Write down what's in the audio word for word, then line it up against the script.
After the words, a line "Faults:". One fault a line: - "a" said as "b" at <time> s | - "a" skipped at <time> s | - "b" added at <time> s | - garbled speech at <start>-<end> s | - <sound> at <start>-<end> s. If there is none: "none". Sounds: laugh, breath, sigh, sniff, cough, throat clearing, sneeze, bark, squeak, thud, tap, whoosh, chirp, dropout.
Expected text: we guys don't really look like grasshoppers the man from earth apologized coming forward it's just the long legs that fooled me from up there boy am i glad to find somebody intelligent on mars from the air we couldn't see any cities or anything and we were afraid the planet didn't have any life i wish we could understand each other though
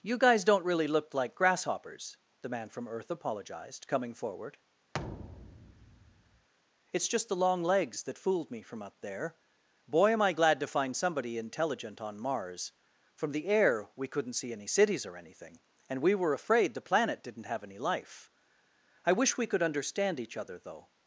you guys don't really look like grasshoppers the man from earth apologized coming forward it's just the long legs that fooled me from up there boy am i glad to find somebody intelligent on mars from the air we couldn't see any cities or anything and we were afraid the planet didn't have any life i wish we could understand each other though
Faults:
- "we" said as "you" at 0.0 s
- thud at 4.9-6.5 s